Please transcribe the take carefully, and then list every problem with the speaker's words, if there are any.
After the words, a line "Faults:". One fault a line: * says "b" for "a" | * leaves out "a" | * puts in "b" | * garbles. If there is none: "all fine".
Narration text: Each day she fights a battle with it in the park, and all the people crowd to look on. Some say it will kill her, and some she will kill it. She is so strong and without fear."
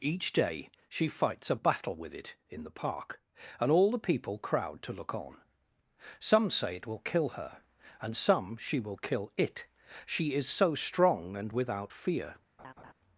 Each day she fights a battle with it in the park, and all the people crowd to look on. Some say it will kill her, and some she will kill it. She is so strong and without fear."
Faults:
all fine